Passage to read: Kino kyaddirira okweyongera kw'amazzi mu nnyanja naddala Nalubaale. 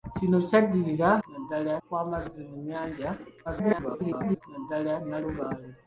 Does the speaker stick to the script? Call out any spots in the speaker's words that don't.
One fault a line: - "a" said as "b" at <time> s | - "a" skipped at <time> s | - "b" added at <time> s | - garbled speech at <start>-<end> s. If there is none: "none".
- "okweyongera" said as "naddala" at 1.3 s
- garbled speech at 3.4-4.4 s